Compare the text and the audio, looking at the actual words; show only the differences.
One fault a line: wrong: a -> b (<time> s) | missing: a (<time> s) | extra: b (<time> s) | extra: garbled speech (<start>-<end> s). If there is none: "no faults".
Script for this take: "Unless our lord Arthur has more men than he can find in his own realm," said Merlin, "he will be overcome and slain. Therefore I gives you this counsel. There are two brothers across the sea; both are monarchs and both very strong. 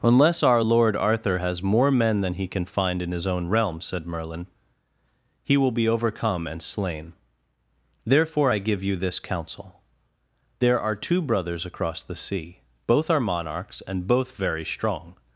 wrong: gives -> give (8.6 s)